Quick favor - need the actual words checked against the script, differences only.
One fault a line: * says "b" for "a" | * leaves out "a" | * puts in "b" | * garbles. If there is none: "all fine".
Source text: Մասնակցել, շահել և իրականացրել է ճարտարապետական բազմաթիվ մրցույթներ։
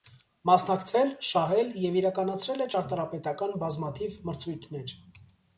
all fine